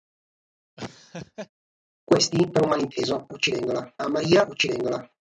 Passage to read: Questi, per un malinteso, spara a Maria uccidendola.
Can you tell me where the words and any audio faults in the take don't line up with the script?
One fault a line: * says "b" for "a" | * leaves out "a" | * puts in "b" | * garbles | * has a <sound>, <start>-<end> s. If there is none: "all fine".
* has a laugh, 0.8-1.5 s
* says "uccidendola" for "spara"